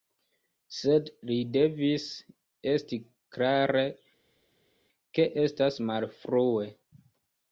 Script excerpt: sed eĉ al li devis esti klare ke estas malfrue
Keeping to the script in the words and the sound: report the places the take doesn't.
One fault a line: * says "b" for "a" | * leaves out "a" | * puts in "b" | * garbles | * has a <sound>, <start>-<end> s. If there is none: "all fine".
* leaves out "eĉ al"